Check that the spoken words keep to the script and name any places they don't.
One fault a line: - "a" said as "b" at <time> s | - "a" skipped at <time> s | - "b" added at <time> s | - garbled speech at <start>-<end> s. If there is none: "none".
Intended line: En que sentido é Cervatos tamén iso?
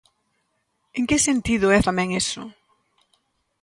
- "Cervatos" skipped at 1.8 s